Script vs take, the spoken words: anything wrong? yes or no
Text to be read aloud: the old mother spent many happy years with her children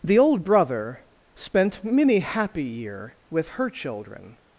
yes